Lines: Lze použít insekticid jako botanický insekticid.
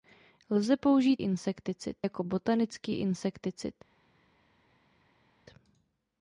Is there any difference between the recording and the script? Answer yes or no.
no